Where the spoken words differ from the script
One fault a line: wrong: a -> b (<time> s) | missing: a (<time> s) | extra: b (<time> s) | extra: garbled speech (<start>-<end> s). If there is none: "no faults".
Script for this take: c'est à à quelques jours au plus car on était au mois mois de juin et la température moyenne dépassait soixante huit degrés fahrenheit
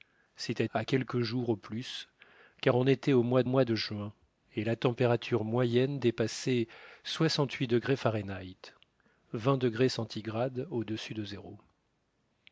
no faults